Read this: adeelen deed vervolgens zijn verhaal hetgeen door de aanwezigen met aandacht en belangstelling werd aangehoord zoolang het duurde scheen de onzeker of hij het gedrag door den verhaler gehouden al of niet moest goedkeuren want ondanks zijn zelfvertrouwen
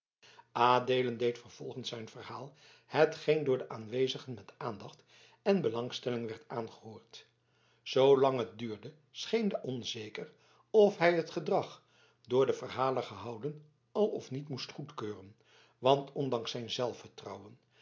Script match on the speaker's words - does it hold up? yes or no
yes